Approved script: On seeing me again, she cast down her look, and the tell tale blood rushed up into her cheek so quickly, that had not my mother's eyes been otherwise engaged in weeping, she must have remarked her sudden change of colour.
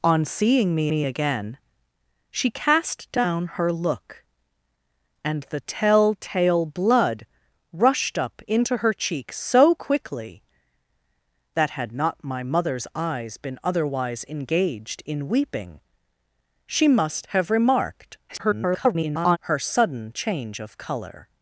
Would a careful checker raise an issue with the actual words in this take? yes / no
yes